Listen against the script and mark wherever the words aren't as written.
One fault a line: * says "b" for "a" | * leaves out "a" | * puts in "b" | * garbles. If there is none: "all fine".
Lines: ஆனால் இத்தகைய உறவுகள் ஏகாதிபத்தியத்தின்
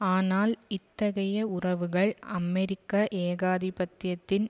* puts in "அமெரிக்க"